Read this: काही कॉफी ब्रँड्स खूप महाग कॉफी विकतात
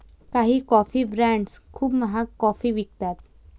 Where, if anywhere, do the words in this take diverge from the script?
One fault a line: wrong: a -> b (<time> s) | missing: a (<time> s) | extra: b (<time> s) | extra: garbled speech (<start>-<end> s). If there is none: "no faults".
no faults